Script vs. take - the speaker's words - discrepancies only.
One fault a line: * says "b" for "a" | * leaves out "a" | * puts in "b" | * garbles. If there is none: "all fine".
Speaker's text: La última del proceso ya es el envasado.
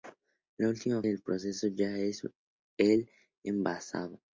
all fine